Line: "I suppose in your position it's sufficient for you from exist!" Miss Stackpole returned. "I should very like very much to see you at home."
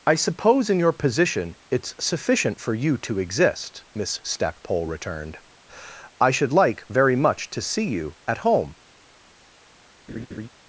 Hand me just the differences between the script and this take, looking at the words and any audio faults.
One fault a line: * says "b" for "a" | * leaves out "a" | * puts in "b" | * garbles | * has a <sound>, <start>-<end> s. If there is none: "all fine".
* says "to" for "from"
* leaves out "very"
* has a laugh, 10.1-10.5 s